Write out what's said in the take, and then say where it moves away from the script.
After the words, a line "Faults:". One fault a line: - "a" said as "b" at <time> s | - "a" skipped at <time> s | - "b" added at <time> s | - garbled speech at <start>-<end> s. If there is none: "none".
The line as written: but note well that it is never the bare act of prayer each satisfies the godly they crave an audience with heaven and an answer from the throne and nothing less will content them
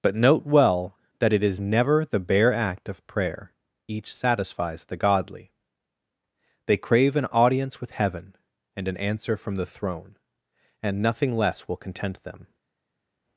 but note well that it is never the bare act of prayer each satisfies the godly they crave an audience with heaven and an answer from the throne and nothing less will content them
Faults:
none